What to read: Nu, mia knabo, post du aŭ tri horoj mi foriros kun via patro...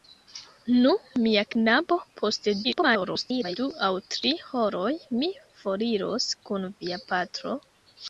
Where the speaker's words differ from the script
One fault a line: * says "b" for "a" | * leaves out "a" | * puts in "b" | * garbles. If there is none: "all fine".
* garbles